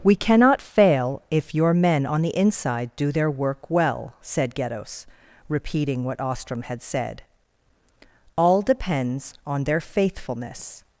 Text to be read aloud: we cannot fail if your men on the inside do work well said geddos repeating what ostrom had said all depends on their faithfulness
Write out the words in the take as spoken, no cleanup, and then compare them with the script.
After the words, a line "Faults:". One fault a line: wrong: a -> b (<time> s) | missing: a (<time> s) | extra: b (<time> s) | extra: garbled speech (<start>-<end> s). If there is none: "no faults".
we cannot fail if your men on the inside do their work well said geddos repeating what ostrom had said all depends on their faithfulness
Faults:
extra: their (3.1 s)